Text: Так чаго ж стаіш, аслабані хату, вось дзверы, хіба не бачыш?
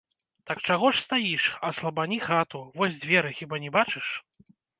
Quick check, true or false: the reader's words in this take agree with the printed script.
true